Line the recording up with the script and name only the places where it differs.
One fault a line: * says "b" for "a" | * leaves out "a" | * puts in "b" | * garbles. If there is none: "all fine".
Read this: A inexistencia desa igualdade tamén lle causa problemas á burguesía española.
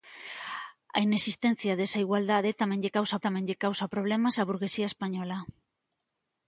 * puts in "tamén lle causa"